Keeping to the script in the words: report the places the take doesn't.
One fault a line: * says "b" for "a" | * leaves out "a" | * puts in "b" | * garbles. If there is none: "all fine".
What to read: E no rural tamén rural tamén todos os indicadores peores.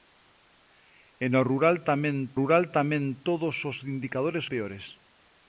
all fine